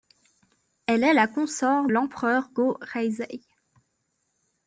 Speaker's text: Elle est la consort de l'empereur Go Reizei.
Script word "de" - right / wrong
wrong